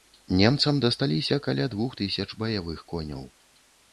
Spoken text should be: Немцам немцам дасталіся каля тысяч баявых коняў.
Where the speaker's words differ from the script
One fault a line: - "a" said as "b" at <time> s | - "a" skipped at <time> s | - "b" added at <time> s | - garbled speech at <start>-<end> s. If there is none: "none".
- "немцам" skipped at 0.8 s
- "двух" added at 1.8 s